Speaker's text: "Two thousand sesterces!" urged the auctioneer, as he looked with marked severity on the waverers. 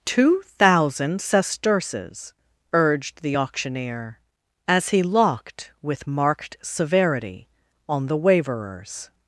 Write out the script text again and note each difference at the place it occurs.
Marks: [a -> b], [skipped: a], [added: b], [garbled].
"Two thousand sesterces!" urged the auctioneer, as he [looked -> locked] with marked severity on the waverers.